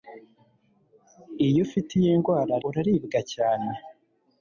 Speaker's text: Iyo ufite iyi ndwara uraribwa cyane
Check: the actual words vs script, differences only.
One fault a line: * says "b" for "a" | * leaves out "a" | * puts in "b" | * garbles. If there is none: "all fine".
all fine